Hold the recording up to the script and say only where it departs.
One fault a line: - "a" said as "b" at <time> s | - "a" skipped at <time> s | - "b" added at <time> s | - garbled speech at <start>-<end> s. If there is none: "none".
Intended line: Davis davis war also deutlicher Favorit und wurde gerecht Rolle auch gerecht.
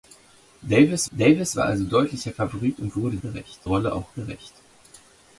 none